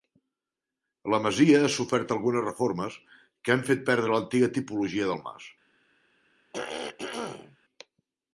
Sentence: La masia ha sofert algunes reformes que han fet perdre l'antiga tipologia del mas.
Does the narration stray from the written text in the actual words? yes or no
no